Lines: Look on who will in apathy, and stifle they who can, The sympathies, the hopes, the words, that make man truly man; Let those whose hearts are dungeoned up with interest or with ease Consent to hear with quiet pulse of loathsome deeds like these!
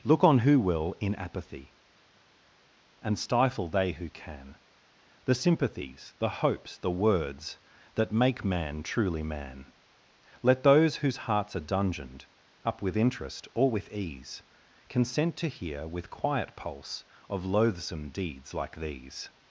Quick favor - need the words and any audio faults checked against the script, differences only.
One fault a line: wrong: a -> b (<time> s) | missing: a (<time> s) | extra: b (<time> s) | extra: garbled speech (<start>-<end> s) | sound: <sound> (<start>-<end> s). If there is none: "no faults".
no faults